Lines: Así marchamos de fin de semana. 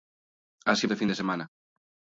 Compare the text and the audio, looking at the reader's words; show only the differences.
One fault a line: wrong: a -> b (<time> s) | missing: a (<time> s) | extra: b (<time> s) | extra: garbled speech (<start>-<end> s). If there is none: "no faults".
missing: marchamos (0.9 s)